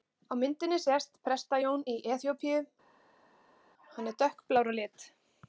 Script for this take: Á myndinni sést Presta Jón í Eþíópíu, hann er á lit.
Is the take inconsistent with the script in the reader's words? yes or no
yes